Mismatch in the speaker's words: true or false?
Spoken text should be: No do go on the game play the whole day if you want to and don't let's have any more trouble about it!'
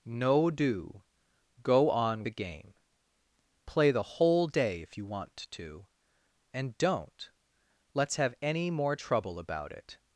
false